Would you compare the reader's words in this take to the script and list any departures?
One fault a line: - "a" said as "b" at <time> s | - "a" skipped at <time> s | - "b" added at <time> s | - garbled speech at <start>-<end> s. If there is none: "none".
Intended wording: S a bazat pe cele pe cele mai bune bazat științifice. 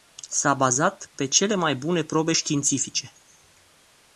- "pe cele" skipped at 1.6 s
- "bazat" said as "probe" at 2.0 s